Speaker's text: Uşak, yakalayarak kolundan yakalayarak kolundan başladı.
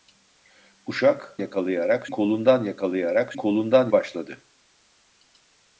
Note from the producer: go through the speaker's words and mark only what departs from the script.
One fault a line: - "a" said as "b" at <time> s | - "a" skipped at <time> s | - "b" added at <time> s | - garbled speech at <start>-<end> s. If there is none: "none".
none